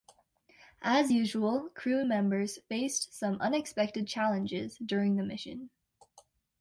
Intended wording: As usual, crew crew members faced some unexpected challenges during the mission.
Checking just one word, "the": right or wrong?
right